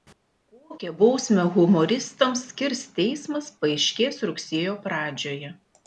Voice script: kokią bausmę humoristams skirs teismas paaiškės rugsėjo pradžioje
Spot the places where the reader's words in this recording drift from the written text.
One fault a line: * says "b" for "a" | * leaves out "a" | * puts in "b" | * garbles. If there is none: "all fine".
all fine